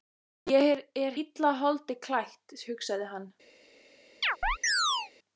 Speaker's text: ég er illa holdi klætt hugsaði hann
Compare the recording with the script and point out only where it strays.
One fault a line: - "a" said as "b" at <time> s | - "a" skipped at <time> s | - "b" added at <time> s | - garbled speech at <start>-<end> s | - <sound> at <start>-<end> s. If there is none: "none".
- chirp at 4.2-5.1 s